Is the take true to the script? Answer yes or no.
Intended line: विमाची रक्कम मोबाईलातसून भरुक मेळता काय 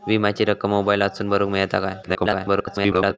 no